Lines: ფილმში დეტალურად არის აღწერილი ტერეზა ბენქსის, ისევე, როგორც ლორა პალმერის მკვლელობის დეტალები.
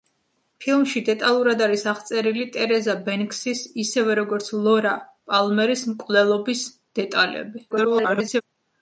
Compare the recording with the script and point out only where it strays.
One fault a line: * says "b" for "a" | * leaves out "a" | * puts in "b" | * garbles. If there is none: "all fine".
* garbles